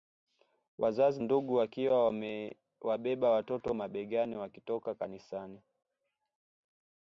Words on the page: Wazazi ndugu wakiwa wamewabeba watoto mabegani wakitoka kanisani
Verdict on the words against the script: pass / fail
pass